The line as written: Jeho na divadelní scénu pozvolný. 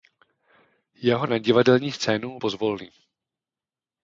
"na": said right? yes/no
yes